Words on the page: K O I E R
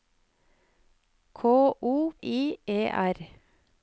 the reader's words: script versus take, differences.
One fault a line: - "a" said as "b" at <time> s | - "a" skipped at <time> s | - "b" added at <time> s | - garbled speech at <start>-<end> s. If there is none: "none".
none